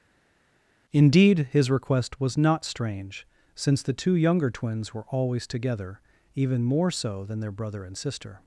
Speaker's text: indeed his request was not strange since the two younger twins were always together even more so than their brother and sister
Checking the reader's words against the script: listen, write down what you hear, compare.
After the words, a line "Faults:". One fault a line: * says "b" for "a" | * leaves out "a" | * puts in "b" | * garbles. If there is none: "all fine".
indeed his request was not strange since the two younger twins were always together even more so than their brother and sister
Faults:
all fine